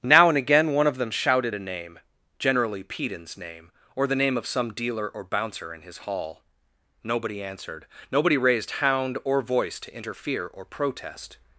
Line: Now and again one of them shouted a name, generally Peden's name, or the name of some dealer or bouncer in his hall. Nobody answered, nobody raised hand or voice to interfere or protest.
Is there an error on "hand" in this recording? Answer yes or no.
yes